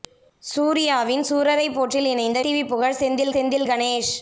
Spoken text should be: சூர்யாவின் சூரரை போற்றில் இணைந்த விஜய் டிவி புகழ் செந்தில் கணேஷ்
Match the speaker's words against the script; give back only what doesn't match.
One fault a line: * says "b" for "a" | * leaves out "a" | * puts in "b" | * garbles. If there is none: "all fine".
* leaves out "விஜய்"
* puts in "செந்தில்"